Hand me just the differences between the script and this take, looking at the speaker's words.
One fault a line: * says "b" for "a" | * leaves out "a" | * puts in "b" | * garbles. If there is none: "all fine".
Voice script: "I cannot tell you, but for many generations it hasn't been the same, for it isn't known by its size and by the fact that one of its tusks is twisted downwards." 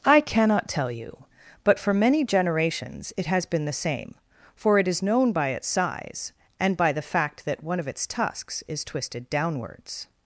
* says "has" for "hasn't"
* says "is" for "isn't"